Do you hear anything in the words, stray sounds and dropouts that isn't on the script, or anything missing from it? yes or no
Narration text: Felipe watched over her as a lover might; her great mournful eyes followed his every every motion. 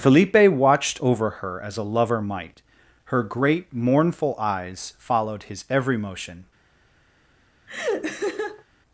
yes